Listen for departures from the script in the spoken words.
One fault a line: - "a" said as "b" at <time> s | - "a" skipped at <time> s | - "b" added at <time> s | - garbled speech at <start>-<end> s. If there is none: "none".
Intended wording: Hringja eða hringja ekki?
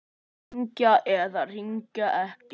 none